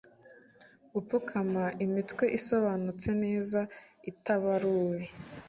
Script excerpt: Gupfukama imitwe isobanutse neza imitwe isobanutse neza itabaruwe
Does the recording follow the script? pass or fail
fail